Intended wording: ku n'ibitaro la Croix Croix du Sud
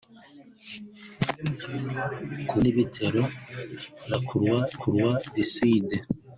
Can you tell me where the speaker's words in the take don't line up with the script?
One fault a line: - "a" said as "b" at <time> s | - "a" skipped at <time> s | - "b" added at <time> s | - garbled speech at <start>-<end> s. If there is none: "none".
none